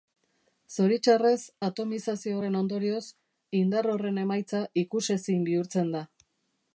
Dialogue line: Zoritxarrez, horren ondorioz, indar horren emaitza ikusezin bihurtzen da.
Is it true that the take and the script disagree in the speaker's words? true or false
true